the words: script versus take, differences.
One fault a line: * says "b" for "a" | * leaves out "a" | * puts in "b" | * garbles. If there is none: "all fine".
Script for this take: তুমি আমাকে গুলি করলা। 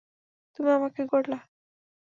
* leaves out "গুলি"